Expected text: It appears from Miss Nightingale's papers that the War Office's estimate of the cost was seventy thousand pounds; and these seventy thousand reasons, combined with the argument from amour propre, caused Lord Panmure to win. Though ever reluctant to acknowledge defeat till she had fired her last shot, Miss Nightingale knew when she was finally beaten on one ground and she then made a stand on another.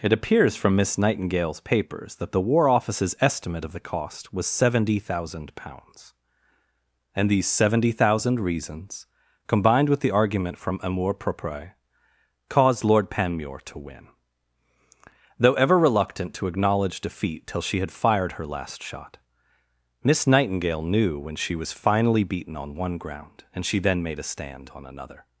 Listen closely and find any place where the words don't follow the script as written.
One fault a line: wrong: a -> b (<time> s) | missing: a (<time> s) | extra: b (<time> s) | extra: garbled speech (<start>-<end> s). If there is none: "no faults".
no faults